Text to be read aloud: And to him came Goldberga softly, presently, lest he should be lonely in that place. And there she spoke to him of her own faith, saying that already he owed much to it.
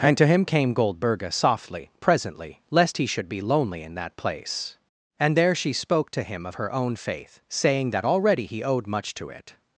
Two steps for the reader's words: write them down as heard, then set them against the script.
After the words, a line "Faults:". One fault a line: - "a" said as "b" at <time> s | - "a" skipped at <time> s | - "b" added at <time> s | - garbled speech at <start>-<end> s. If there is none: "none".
And to him came Goldberga softly, presently, lest he should be lonely in that place. And there she spoke to him of her own faith, saying that already he owed much to it.
Faults:
none